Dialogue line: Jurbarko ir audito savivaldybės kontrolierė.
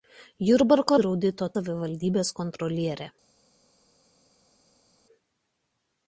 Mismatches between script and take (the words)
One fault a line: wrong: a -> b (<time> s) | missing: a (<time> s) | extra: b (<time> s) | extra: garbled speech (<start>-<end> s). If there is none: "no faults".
no faults